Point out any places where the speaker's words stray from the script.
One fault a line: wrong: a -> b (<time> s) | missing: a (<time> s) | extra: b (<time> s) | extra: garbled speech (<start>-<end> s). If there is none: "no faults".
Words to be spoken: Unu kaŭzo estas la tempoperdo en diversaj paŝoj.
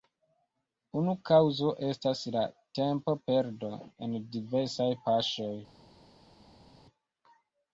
no faults